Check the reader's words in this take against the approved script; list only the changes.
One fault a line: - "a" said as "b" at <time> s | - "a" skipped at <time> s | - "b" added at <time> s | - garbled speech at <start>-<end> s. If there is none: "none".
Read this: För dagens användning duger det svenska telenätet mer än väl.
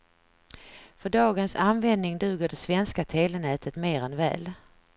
none